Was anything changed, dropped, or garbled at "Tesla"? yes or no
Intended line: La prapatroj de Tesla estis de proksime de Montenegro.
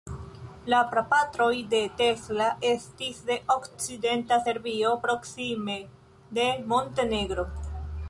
no